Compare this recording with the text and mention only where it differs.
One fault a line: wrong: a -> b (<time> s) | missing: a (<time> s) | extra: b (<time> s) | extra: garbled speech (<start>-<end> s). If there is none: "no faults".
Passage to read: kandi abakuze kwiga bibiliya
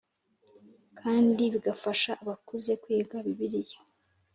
extra: bigafasha (1.5 s)